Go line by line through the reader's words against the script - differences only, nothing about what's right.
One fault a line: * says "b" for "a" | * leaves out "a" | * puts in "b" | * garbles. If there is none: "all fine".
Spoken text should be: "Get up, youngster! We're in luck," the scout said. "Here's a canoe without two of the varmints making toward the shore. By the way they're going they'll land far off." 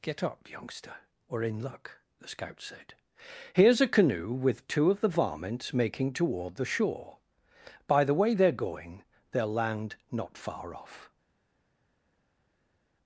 * says "with" for "without"
* puts in "not"